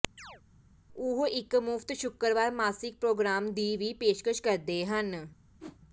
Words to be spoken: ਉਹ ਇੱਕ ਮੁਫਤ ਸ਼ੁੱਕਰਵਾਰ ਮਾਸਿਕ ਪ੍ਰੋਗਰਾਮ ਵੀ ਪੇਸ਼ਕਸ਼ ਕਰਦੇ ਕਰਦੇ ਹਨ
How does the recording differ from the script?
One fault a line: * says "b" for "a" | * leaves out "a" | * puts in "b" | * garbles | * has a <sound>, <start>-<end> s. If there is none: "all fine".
* has a chirp, 0.2-0.4 s
* puts in "ਦੀ"
* leaves out "ਕਰਦੇ"
* has a whoosh, 5.6-5.8 s